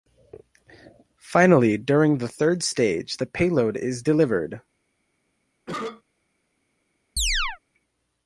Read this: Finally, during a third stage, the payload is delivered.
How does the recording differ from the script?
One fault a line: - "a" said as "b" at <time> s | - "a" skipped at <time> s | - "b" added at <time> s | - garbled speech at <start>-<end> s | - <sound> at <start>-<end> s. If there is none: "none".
- "a" said as "the" at 2.2 s
- cough at 5.7-6.0 s
- chirp at 7.2-7.6 s